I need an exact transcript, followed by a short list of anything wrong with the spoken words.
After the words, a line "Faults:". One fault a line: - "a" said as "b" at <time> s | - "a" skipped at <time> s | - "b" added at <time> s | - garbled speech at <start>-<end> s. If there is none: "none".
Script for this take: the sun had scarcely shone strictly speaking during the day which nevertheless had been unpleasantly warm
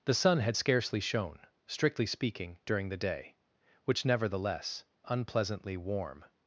the sun had scarcely shone strictly speaking during the day which nevertheless unpleasantly warm
Faults:
- "had been" skipped at 4.9 s